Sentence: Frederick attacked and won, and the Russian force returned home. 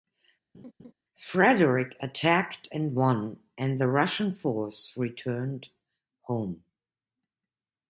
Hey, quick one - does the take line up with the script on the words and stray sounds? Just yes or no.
no